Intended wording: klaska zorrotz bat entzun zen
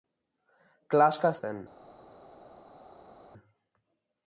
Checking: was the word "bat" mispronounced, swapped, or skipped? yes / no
yes